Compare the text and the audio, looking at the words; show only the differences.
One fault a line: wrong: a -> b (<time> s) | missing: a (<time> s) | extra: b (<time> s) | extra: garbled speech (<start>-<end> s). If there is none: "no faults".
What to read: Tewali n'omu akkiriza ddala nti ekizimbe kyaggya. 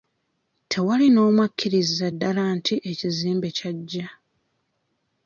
no faults